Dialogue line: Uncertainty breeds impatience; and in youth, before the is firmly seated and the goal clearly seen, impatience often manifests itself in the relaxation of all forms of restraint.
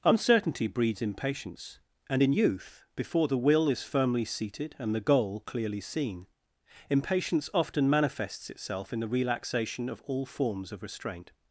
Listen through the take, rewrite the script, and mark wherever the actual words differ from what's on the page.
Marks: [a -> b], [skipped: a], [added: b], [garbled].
Uncertainty breeds impatience; and in youth, before the [added: will] is firmly seated and the goal clearly seen, impatience often manifests itself in the relaxation of all forms of restraint.